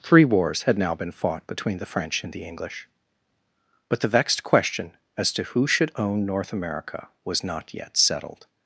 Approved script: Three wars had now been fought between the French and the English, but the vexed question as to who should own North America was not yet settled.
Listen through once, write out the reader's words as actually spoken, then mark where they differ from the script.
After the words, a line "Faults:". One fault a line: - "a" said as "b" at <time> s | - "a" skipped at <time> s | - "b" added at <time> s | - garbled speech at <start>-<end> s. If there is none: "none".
Three wars had now been fought between the French and the English, but the vexed question as to who should own North America was not yet settled.
Faults:
none